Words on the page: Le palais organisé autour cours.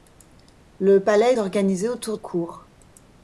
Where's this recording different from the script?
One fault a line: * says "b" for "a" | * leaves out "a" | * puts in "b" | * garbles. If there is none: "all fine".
all fine